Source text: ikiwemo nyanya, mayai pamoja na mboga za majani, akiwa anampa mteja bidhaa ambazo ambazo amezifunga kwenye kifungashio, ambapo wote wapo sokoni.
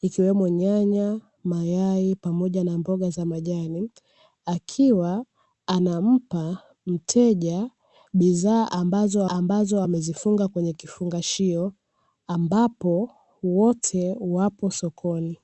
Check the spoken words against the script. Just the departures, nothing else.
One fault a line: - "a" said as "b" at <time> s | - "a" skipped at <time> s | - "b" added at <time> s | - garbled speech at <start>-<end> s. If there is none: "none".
none